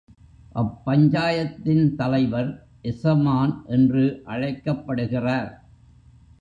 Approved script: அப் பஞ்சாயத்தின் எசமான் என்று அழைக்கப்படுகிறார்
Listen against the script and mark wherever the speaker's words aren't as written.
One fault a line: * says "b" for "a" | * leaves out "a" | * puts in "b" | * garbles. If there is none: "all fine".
* puts in "தலைவர்"